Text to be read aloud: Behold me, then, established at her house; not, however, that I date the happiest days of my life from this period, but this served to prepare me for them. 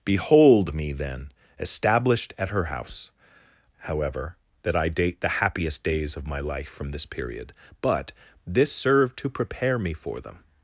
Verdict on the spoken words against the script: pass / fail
fail